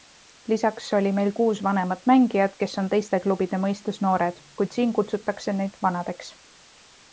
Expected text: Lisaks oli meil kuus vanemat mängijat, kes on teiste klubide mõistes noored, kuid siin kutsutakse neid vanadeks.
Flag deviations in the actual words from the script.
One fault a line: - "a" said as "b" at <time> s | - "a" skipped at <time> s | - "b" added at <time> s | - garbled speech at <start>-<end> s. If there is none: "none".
none